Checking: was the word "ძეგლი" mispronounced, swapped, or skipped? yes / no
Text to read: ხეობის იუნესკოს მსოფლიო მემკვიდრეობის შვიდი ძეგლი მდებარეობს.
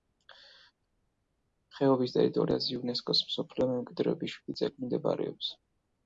no